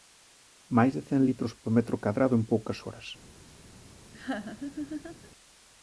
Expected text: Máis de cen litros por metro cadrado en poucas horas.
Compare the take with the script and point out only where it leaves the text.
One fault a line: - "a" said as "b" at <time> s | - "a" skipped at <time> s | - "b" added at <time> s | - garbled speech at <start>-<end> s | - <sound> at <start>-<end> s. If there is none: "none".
- laugh at 4.1-5.3 s